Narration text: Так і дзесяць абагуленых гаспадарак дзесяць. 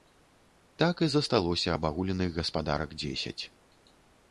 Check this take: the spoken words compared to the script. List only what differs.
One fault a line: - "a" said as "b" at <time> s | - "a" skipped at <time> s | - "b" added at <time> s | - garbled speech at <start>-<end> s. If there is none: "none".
- "дзесяць" said as "засталося" at 1.1 s